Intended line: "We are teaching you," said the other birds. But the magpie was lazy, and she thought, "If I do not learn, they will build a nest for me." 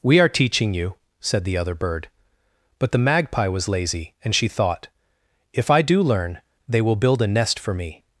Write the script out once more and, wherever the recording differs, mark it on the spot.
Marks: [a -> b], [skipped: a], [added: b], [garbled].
"We are teaching you," said the other [birds. -> bird] But the magpie was lazy, and she thought, "If I do [skipped: not] learn, they will build a nest for me."